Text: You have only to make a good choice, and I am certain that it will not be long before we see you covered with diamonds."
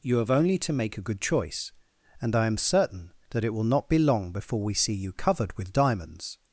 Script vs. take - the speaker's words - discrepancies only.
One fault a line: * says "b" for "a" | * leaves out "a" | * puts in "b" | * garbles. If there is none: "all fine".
all fine